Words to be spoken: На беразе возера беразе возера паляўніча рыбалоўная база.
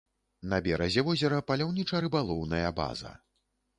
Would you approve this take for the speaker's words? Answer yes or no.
no